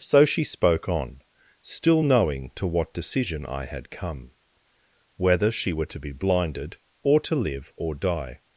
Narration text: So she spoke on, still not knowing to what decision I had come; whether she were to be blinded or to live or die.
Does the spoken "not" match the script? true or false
false